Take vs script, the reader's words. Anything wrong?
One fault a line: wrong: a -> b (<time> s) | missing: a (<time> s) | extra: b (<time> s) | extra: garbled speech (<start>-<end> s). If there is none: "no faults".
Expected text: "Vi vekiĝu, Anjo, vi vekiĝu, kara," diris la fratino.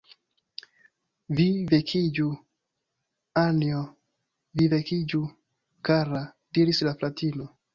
no faults